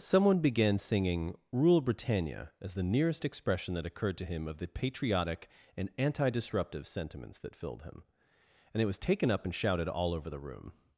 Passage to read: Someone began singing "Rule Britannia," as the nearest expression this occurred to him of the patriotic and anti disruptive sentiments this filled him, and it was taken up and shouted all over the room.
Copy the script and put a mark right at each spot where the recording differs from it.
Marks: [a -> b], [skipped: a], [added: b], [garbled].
Someone began singing "Rule Britannia," as the nearest expression [this -> that] occurred to him of the patriotic and anti disruptive sentiments [this -> that] filled him, and it was taken up and shouted all over the room.